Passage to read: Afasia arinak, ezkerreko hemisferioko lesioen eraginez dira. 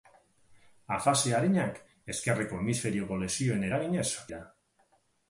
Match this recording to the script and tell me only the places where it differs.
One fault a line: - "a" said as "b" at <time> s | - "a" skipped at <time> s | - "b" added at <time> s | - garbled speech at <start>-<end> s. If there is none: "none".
none